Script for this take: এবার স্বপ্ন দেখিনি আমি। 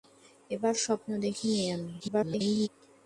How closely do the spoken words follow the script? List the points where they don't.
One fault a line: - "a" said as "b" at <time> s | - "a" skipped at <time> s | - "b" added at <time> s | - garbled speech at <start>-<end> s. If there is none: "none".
- garbled speech at 2.0-2.7 s